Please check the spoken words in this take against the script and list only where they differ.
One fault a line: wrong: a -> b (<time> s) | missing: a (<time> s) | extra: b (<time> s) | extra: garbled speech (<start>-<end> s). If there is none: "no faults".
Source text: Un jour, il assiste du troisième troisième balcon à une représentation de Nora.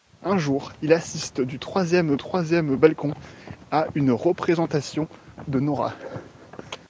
no faults